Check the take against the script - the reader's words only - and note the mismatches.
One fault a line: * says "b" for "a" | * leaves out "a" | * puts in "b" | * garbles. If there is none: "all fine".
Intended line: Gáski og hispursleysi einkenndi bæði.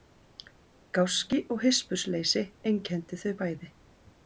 * puts in "þau"